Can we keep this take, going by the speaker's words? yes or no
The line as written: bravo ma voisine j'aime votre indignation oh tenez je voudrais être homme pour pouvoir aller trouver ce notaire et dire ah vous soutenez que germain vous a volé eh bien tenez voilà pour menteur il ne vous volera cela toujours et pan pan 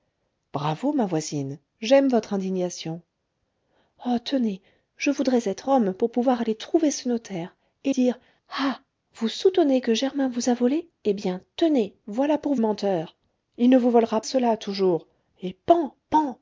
yes